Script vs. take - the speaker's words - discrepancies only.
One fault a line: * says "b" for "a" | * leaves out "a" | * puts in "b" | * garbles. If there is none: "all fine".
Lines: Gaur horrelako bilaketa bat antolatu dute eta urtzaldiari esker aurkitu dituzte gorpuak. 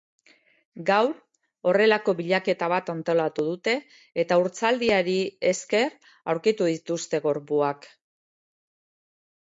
all fine